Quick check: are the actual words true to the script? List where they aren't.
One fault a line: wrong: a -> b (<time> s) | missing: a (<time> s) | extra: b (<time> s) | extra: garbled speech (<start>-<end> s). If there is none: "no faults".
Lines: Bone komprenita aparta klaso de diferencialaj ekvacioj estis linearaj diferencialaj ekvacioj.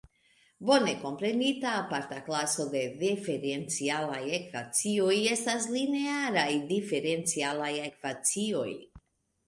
wrong: estis -> estas (5.3 s)